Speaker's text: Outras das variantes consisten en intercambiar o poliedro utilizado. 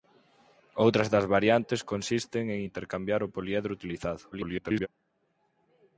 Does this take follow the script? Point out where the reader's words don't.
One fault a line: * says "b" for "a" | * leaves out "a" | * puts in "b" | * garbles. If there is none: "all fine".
* garbles